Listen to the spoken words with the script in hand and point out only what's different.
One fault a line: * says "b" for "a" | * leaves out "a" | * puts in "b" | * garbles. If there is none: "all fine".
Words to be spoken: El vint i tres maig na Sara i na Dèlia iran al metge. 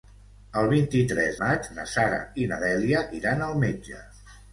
all fine